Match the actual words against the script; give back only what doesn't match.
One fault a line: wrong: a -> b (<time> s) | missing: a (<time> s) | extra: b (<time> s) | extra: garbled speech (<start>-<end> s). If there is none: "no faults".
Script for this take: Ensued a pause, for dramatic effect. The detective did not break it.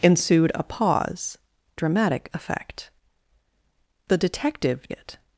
missing: for (1.4 s)
missing: did not break (4.9 s)